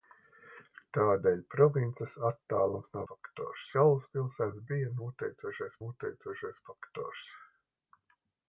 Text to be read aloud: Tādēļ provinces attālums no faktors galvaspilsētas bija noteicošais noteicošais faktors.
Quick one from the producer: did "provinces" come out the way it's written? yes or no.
yes